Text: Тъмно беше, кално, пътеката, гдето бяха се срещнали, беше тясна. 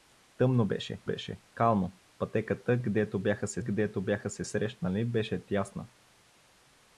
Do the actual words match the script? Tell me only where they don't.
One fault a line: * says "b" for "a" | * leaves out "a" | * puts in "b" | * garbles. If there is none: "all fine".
* puts in "беше"
* puts in "гдето бяха се"